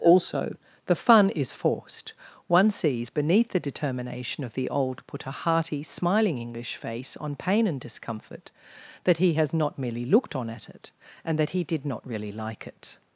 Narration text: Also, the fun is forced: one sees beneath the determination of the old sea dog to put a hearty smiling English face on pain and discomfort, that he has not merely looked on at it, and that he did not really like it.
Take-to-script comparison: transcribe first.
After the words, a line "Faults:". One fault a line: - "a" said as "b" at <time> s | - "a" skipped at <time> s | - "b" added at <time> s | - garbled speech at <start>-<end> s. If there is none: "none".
Also, the fun is forced: one sees beneath the determination of the old put a hearty smiling English face on pain and discomfort, that he has not merely looked on at it, and that he did not really like it.
Faults:
- "sea dog to" skipped at 5.0 s